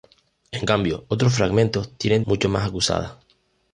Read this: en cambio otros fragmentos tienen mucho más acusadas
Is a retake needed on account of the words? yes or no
no